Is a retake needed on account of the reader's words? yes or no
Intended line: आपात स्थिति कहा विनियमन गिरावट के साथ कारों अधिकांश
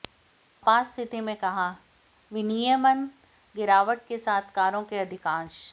yes